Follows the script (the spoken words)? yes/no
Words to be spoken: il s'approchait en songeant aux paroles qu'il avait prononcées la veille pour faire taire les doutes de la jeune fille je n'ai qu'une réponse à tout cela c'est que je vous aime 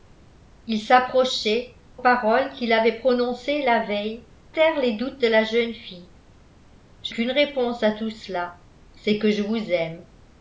no